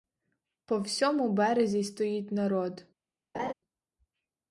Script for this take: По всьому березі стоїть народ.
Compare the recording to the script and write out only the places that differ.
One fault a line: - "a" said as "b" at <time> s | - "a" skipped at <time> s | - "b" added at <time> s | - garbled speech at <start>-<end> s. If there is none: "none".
none